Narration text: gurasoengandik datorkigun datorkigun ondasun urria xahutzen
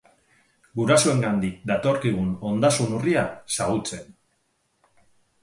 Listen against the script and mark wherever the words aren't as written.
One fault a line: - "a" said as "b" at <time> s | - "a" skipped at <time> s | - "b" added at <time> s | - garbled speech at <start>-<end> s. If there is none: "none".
- "datorkigun" skipped at 2.3 s